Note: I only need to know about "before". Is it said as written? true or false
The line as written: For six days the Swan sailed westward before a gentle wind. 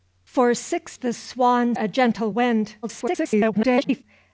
false